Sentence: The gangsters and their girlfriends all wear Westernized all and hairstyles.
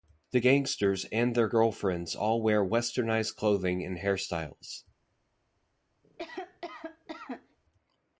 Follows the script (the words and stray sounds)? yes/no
no